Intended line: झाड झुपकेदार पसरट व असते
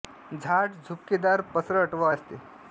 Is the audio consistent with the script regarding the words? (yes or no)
yes